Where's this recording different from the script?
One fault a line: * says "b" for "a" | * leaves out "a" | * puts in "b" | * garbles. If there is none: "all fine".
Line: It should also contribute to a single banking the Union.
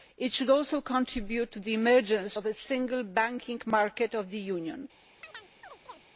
* puts in "the emergence of"
* puts in "market of"